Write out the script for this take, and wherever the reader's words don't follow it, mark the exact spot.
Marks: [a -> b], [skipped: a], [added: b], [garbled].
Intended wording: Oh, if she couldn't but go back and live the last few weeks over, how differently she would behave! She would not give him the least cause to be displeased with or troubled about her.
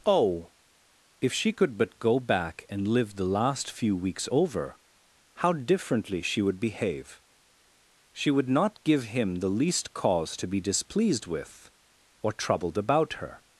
Oh, if she [couldn't -> could] but go back and live the last few weeks over, how differently she would behave! She would not give him the least cause to be displeased with or troubled about her.